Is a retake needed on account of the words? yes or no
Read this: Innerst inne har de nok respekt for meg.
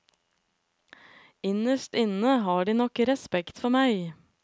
no